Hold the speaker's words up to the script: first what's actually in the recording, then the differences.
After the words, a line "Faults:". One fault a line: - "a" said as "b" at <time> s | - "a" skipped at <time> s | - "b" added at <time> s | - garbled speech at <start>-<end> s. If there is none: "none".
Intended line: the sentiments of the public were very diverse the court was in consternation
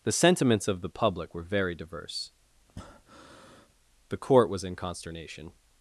the sentiments of the public were very diverse the court was in consternation
Faults:
none